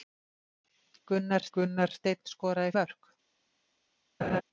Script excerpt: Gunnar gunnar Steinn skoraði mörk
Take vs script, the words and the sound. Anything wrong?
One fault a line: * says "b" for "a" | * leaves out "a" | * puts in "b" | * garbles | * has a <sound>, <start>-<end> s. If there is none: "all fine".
* has a laugh, 4.2-4.4 s